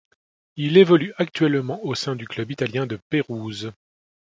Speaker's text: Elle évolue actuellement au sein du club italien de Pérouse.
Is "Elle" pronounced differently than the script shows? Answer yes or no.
yes